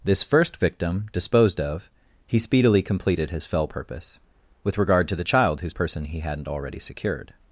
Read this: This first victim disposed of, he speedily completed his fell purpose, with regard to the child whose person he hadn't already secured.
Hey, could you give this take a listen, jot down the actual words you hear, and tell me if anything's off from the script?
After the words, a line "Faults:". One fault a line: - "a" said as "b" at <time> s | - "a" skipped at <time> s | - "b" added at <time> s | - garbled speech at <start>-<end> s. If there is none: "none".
This first victim disposed of, he speedily completed his fell purpose, with regard to the child whose person he hadn't already secured.
Faults:
none